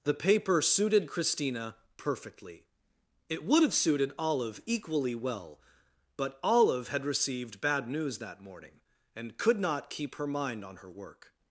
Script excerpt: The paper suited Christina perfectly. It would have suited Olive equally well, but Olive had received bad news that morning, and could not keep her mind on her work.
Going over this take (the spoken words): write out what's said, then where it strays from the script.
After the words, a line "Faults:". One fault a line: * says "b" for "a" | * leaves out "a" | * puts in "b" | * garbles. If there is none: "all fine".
The paper suited Christina perfectly. It would have suited Olive equally well, but Olive had received bad news that morning, and could not keep her mind on her work.
Faults:
all fine